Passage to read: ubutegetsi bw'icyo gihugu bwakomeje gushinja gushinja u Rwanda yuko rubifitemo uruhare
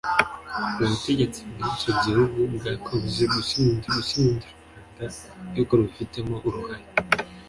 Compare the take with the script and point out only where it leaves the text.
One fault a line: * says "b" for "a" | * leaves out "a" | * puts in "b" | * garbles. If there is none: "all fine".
all fine